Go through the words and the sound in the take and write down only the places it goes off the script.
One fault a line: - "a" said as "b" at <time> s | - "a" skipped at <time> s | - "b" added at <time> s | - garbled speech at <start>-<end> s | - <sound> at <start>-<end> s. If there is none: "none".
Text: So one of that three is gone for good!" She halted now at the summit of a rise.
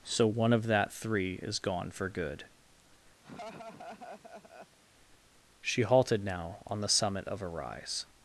- laugh at 3.2-4.8 s
- "at" said as "on" at 6.7 s